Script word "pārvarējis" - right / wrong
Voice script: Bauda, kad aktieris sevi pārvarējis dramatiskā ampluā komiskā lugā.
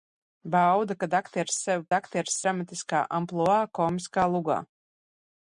wrong